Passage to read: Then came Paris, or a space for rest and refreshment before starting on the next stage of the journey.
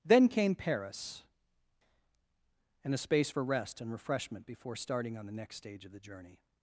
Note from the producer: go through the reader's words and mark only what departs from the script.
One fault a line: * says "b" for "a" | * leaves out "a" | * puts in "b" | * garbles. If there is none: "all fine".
* says "and" for "or"